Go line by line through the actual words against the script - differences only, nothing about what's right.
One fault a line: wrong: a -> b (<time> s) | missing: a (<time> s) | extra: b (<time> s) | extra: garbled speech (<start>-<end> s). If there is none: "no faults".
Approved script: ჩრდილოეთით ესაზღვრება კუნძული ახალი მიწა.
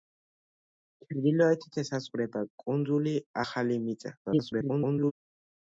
extra: garbled speech (4.3-5.1 s)